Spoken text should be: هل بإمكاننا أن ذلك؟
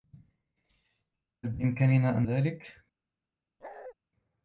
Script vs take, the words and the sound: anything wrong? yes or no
yes